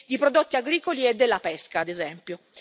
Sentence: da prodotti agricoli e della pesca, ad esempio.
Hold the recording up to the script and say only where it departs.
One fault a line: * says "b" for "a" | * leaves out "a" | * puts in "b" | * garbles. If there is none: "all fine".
* says "di" for "da"